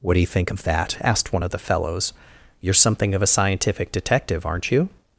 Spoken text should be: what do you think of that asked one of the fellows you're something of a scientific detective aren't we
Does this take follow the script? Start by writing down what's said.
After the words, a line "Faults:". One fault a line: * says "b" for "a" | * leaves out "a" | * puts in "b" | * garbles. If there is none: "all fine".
what do you think of that asked one of the fellows you're something of a scientific detective aren't you
Faults:
* says "you" for "we"